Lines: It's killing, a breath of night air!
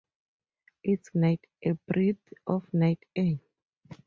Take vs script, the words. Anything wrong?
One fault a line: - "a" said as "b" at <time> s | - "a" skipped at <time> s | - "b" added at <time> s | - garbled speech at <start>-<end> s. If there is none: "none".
- "killing" said as "night" at 1.1 s